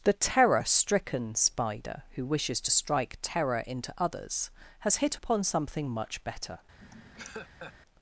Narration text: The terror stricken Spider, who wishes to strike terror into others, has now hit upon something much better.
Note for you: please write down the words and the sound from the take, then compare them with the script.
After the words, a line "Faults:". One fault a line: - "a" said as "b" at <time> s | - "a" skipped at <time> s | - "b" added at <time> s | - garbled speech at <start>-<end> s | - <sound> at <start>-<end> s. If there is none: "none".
The terror stricken Spider, who wishes to strike terror into others, has hit upon something much better.
Faults:
- "now" skipped at 5.0 s
- laugh at 6.8-7.7 s